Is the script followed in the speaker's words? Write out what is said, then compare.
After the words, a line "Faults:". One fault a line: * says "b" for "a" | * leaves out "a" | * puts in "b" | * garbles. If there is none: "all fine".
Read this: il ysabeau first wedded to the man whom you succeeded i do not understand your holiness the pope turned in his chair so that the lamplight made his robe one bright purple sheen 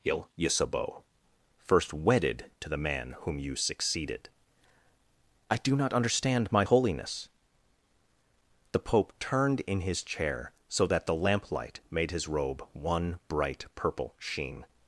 il ysabeau first wedded to the man whom you succeeded i do not understand my holiness the pope turned in his chair so that the lamplight made his robe one bright purple sheen
Faults:
* says "my" for "your"